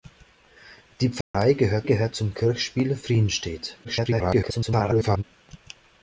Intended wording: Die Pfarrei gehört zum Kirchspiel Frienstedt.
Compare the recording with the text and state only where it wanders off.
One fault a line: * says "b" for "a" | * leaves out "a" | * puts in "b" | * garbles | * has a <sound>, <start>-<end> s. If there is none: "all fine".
* has a dropout, 1.2-1.3 s
* puts in "gehört"
* garbles